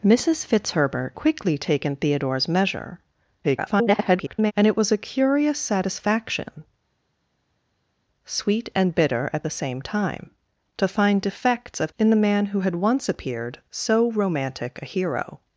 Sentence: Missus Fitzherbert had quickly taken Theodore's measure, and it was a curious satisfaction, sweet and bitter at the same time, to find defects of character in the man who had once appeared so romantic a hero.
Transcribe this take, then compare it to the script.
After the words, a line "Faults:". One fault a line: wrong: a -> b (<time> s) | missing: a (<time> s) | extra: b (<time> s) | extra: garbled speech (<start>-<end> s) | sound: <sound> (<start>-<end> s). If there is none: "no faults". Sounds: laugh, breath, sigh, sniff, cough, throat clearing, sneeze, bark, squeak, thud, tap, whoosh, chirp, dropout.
Missus Fitzherbert quickly taken Theodore's measure, [garbled] and it was a curious satisfaction, sweet and bitter at the same time, to find defects of in the man who had once appeared so romantic a hero.
Faults:
missing: had (1.1 s)
extra: garbled speech (3.4-4.5 s)
missing: character (11.9 s)